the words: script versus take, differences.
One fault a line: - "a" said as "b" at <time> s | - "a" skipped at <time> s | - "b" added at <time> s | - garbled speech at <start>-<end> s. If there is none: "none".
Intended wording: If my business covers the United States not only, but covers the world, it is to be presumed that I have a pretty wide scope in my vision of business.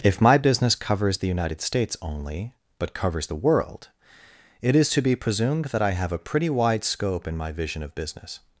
- "not" skipped at 1.9 s